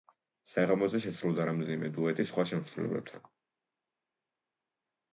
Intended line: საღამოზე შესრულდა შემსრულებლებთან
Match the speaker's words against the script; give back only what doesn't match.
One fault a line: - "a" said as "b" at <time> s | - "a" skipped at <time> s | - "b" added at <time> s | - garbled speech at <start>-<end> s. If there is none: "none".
- "რამდენიმე დუეტი სხვა" added at 1.5 s